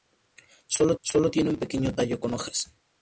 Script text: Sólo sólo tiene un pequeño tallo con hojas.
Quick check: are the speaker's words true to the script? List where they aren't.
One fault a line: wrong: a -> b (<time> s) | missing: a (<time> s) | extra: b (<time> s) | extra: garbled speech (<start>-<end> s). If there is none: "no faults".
no faults